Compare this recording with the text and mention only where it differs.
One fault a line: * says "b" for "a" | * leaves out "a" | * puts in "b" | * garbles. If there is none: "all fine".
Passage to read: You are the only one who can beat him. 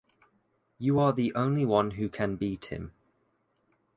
all fine